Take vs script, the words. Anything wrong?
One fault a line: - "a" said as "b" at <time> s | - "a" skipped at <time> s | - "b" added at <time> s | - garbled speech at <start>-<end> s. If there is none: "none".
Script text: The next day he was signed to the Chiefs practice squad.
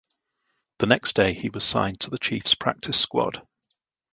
none